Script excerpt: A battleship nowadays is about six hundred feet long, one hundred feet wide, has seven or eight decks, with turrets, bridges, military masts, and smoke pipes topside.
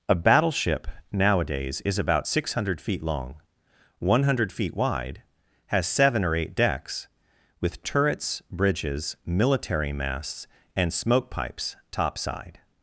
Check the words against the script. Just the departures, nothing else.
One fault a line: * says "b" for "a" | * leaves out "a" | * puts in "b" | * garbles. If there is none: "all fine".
all fine